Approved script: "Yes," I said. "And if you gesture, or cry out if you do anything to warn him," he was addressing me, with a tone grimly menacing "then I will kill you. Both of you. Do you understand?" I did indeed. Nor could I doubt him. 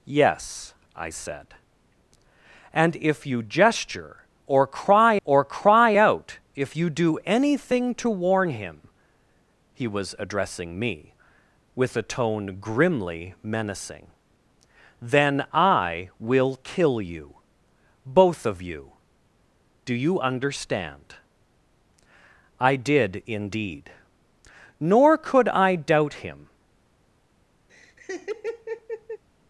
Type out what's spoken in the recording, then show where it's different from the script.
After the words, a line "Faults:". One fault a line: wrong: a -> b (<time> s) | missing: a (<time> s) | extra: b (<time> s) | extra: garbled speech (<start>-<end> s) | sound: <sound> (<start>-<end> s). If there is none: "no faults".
"Yes," I said. "And if you gesture, or cry or cry out if you do anything to warn him," he was addressing me, with a tone grimly menacing "then I will kill you. Both of you. Do you understand?" I did indeed. Nor could I doubt him.
Faults:
extra: or cry (5.2 s)
sound: laugh (27.7-29.2 s)